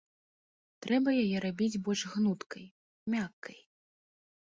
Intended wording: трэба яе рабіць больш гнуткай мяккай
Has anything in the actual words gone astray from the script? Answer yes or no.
no